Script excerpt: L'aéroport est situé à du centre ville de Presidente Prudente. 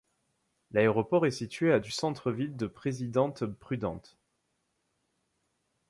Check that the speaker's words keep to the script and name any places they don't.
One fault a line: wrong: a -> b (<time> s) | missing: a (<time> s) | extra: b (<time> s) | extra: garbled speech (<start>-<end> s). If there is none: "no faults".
no faults